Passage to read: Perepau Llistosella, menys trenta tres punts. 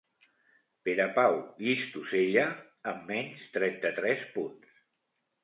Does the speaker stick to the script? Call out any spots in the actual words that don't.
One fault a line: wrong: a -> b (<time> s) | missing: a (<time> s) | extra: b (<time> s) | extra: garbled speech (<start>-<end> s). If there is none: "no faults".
extra: amb (2.9 s)